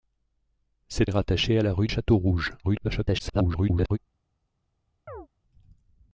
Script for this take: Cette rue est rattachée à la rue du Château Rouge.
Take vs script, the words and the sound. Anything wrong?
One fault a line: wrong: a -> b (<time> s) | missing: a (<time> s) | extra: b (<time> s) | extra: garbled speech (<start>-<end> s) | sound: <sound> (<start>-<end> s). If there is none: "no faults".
missing: rue (1.1 s)
missing: du (1.9 s)
extra: garbled speech (2.6-4.0 s)
sound: chirp (5.1-5.3 s)